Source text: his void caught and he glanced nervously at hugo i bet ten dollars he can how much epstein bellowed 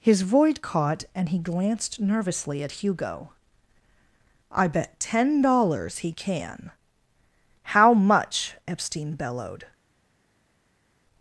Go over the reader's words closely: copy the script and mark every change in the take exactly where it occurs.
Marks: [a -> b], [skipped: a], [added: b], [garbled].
his void caught and he glanced nervously at hugo i bet ten dollars he can how much epstein bellowed